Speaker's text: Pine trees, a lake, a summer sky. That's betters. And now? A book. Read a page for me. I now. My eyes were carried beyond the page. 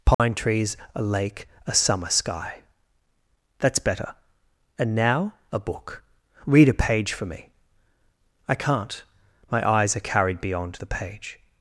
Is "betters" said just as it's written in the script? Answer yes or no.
no